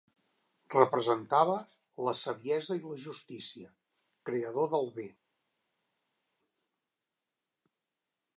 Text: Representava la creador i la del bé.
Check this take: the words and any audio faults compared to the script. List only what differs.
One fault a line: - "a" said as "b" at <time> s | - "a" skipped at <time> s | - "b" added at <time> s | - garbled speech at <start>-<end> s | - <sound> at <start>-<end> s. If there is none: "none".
- "creador" said as "saviesa" at 2.2 s
- "justícia creador" added at 3.1 s